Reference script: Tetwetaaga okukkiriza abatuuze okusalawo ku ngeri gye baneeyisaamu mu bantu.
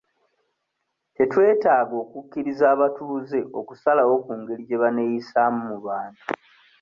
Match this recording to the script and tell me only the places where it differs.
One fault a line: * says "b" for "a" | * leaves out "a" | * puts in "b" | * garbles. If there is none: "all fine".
all fine